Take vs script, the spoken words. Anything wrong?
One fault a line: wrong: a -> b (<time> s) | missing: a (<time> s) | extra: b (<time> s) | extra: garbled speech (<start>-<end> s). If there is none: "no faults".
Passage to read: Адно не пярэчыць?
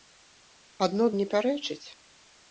no faults